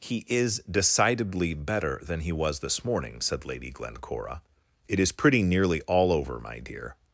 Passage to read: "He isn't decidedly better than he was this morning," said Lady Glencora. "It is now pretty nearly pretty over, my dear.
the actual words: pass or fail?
fail